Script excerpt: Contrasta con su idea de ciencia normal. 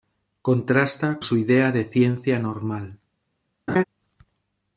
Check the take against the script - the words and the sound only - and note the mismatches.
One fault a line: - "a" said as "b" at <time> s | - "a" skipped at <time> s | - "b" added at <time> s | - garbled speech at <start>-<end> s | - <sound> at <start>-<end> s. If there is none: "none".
- "con" skipped at 1.2 s
- laugh at 3.7-3.8 s